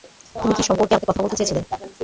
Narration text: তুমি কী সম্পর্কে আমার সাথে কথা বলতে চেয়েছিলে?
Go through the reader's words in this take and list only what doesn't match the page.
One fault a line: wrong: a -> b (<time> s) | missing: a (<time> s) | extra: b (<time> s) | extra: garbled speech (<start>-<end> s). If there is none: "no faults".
missing: আমার (0.9 s)